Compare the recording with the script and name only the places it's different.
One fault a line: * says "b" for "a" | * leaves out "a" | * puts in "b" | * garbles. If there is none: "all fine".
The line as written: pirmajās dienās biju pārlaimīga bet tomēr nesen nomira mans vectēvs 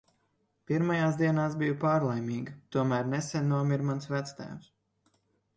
* leaves out "bet"